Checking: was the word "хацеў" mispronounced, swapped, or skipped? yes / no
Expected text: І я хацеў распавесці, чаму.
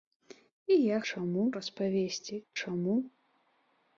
yes